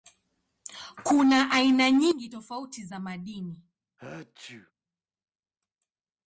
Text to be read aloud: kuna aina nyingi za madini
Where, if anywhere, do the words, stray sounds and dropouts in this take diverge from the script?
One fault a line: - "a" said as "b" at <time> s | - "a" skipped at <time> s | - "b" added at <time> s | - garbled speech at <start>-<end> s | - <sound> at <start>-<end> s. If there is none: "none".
- "tofauti" added at 2.3 s
- sneeze at 4.0-4.7 s